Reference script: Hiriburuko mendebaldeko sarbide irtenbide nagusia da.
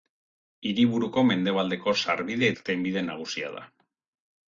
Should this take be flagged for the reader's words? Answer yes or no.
no